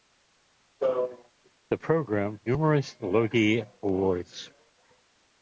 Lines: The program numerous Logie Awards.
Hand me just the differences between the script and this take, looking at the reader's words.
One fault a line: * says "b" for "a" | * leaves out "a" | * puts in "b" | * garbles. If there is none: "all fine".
all fine